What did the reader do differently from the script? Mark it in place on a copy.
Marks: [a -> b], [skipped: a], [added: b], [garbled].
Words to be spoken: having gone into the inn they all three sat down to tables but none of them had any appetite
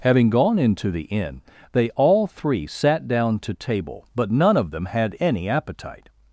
having gone into the inn they all three sat down to [tables -> table] but none of them had any appetite